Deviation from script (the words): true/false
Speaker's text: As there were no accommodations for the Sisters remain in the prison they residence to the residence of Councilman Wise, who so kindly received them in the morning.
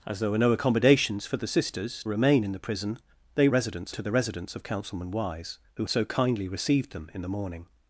false